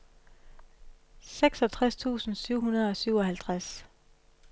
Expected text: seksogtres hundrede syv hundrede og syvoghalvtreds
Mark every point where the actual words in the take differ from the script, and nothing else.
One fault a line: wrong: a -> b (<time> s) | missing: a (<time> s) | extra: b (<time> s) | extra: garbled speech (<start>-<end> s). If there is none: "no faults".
wrong: hundrede -> tusind (1.9 s)